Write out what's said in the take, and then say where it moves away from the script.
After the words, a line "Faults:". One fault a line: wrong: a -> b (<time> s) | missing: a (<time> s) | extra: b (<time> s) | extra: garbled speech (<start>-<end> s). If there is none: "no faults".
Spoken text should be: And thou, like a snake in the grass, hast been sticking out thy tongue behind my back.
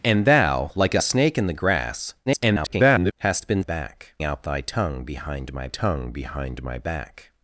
And thou, like a snake in the grass, [garbled] hast been back out thy tongue behind my tongue behind my back.
Faults:
extra: garbled speech (2.3-3.1 s)
wrong: sticking -> back (3.6 s)
extra: tongue behind my (5.7 s)